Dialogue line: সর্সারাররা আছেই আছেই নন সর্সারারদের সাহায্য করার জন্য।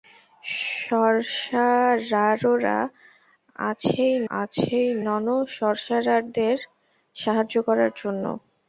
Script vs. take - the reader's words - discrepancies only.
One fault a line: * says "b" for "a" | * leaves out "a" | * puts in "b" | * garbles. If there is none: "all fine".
all fine